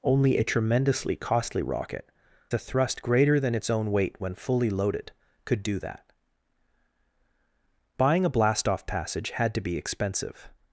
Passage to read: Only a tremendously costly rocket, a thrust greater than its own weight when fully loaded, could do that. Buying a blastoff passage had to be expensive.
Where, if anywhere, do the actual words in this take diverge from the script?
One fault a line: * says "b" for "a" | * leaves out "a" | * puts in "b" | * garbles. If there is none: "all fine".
all fine